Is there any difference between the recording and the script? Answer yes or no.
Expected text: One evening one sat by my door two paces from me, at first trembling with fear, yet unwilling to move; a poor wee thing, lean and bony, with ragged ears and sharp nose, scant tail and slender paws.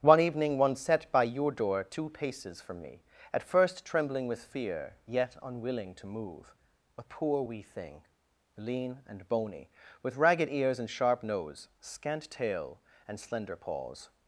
yes